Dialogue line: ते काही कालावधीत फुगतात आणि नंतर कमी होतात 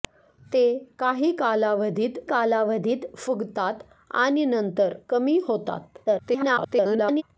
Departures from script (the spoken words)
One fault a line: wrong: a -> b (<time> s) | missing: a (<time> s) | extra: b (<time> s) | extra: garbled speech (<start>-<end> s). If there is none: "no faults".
extra: कालावधीत (2.3 s)
extra: garbled speech (6.1-7.2 s)